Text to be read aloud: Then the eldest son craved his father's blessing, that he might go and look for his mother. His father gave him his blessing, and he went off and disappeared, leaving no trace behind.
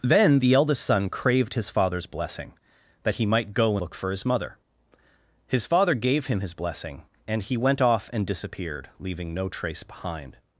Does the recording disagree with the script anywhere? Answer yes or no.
yes